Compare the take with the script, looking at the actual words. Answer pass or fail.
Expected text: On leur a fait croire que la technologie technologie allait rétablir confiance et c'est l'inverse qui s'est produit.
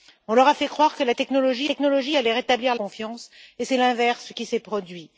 pass